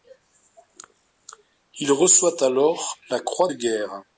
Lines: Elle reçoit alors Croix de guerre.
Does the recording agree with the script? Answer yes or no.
no